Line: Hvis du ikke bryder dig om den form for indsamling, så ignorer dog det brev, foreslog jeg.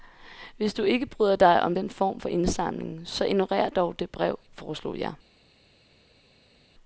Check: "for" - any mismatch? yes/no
no